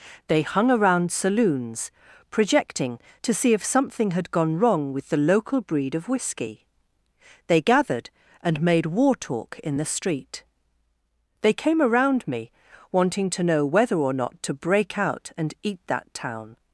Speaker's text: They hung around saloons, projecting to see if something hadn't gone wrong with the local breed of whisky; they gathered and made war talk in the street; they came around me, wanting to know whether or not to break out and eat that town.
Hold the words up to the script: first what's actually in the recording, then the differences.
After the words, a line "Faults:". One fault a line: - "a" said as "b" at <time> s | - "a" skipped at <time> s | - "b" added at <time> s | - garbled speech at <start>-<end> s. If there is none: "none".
They hung around saloons, projecting to see if something had gone wrong with the local breed of whisky; they gathered and made war talk in the street; they came around me, wanting to know whether or not to break out and eat that town.
Faults:
- "hadn't" said as "had" at 4.1 s